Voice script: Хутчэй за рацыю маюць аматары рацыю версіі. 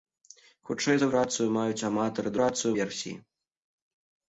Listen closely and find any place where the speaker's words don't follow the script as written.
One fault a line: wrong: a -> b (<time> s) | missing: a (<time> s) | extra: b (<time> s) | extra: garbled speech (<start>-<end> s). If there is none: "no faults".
no faults